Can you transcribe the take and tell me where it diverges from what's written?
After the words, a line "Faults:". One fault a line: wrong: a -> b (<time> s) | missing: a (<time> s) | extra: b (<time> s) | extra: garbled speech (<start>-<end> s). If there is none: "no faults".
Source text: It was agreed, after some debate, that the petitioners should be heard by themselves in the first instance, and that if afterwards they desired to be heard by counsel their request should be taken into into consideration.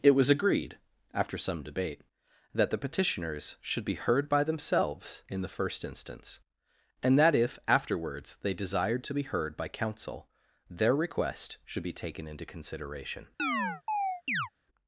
It was agreed, after some debate, that the petitioners should be heard by themselves in the first instance, and that if afterwards they desired to be heard by counsel their request should be taken into consideration.
Faults:
missing: into (12.4 s)